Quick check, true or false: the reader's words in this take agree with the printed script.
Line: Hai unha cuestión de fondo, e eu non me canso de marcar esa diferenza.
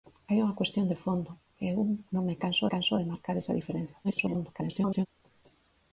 false